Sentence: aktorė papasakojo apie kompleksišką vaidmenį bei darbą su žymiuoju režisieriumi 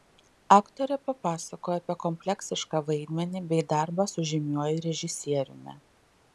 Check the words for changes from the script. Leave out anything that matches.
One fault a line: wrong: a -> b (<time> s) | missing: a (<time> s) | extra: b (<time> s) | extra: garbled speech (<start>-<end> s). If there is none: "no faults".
no faults